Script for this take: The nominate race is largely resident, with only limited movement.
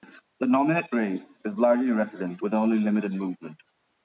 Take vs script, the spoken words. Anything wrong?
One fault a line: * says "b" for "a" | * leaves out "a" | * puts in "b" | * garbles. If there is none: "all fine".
all fine